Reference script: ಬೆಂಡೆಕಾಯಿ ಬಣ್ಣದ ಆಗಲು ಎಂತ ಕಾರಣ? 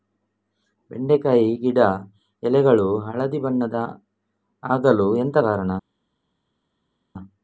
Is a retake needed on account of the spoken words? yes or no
yes